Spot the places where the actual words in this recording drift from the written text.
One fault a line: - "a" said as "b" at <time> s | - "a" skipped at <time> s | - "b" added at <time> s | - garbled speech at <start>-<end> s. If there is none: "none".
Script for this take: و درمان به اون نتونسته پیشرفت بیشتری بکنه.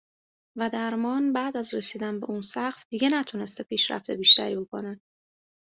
- "بعد از رسیدن" added at 1.3 s
- "سقف دیگه" added at 2.4 s